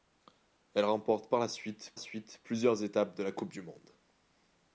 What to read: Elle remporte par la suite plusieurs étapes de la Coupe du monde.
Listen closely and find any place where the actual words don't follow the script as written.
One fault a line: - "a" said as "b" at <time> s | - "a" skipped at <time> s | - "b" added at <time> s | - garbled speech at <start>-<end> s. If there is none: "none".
- "suite" added at 2.0 s